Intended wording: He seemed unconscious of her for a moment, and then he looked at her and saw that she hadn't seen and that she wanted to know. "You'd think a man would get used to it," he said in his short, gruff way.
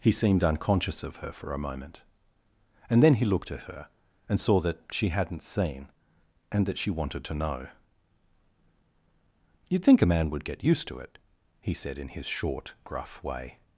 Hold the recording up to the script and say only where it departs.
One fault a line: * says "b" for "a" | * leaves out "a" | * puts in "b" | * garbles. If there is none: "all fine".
all fine